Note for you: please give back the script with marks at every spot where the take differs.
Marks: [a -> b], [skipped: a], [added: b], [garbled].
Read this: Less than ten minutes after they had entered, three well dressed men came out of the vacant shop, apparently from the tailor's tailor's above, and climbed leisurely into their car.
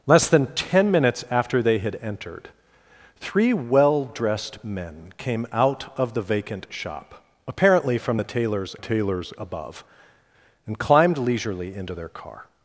Less than ten minutes after they had entered, three well dressed men came out of the vacant shop, apparently from the tailor's tailor's above, and climbed leisurely into their car.